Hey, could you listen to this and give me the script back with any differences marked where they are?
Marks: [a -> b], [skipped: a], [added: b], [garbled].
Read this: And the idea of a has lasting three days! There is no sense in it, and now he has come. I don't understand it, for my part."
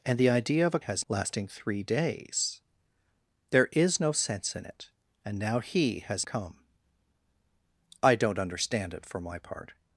And the idea of a has lasting three days! There is no sense in it, and now he has come. I don't understand it, for my part."